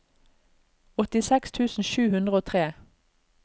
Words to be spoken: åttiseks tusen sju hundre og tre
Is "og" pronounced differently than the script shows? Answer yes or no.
no